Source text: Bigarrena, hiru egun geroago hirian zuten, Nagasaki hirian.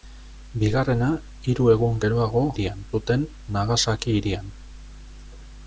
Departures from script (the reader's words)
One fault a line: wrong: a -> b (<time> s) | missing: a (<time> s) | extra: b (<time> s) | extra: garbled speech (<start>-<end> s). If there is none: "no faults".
no faults